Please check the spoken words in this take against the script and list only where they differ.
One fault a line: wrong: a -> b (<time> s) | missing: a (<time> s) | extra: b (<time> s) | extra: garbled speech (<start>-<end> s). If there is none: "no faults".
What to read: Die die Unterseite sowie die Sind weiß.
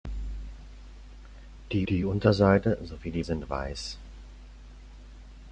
no faults